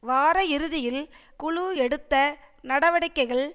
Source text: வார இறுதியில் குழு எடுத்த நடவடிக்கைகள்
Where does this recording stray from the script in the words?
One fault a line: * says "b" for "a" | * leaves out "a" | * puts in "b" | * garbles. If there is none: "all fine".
all fine